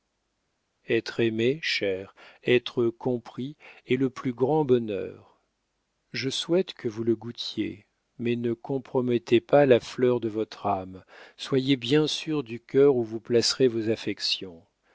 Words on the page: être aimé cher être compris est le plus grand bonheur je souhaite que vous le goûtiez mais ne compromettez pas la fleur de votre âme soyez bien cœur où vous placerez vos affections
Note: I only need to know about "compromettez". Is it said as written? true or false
true